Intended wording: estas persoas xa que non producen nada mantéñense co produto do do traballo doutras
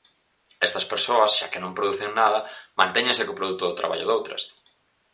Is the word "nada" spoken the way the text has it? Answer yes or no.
yes